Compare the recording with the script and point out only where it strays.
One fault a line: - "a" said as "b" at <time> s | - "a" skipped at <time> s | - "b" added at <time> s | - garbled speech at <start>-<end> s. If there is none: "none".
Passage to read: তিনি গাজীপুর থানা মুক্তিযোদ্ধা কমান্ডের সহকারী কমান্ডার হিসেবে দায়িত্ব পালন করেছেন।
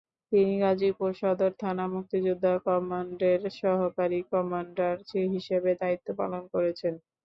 - "সদর" added at 1.2 s